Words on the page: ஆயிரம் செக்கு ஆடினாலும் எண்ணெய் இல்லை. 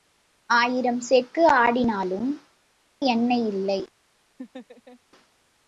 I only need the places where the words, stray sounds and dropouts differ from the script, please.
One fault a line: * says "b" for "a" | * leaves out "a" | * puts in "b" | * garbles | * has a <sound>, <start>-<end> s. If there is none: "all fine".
* has a laugh, 4.4-5.0 s